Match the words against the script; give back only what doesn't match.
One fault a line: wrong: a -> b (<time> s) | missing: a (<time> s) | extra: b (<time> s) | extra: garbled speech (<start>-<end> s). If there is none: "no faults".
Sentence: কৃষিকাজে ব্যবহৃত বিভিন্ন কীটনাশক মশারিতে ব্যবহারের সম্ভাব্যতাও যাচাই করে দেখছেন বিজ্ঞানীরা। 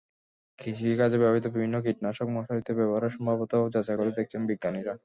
no faults